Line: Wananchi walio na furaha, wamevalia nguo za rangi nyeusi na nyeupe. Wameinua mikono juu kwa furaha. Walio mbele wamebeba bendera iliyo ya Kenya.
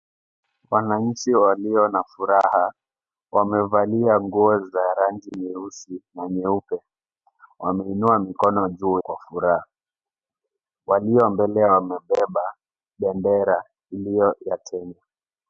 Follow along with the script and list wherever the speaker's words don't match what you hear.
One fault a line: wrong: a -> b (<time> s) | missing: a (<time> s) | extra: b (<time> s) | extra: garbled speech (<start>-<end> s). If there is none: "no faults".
no faults